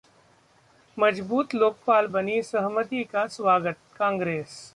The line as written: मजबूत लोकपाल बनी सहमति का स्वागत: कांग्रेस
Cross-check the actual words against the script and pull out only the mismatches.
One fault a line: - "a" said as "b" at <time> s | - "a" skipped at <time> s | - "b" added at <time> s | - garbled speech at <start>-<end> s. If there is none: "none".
none